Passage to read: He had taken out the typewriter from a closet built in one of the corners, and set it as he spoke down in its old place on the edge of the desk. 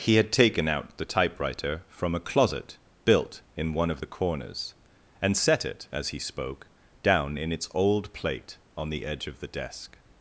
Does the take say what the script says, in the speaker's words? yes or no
no